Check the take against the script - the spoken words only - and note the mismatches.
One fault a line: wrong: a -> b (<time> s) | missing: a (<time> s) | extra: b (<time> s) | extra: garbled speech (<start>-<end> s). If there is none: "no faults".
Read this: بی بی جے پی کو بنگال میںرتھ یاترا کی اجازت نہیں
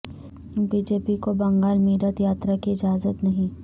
missing: بی (0.8 s)